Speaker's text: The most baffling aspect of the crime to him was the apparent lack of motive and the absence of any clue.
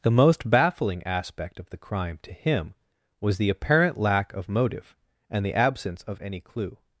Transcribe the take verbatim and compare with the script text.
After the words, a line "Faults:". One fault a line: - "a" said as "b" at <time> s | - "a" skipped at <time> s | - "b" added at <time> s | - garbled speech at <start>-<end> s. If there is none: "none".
The most baffling aspect of the crime to him was the apparent lack of motive and the absence of any clue.
Faults:
none